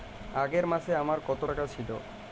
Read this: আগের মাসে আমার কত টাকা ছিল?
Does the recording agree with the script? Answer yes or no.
yes